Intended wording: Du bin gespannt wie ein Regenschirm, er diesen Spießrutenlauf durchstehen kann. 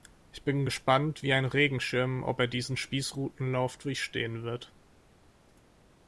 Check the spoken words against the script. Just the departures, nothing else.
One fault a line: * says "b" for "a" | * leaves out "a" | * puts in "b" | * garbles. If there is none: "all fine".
* says "Ich" for "Du"
* puts in "ob"
* says "wird" for "kann"